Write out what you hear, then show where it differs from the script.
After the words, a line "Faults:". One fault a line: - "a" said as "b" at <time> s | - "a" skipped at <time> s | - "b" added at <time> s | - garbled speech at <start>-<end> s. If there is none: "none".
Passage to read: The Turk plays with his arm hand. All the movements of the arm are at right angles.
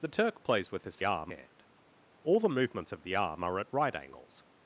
The Turk plays with his arm hand. All the movements of the arm are at right angles.
Faults:
none